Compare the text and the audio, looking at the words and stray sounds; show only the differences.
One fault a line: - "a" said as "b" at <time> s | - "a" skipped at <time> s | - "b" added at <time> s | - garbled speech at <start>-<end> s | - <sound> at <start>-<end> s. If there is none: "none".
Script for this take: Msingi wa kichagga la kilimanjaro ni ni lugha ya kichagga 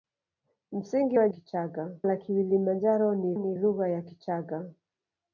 none